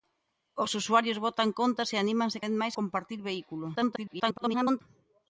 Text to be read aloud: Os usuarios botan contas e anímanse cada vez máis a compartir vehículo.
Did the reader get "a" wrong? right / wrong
wrong